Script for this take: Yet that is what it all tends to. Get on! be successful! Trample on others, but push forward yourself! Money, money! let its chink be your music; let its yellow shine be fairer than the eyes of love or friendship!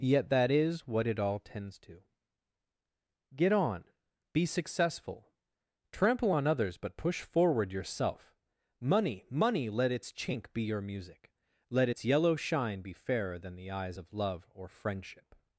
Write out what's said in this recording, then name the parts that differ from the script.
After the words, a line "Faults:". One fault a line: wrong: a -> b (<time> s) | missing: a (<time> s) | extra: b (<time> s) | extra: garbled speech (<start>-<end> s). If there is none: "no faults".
Yet that is what it all tends to. Get on! be successful! Trample on others, but push forward yourself! Money, money! let its chink be your music; let its yellow shine be fairer than the eyes of love or friendship!
Faults:
no faults